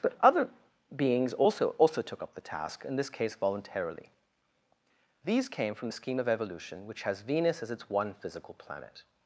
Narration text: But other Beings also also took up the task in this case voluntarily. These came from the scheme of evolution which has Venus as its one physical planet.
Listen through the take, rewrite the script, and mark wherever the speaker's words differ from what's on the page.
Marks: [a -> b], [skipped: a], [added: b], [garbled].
But other Beings also also took up the task in this case voluntarily. These came from the scheme of evolution which has Venus as its one physical planet.